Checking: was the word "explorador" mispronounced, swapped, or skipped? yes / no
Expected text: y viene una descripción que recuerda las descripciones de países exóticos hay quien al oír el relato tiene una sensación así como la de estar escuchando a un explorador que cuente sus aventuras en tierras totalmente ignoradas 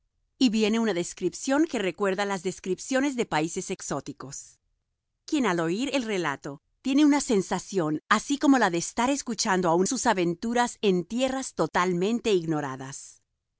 yes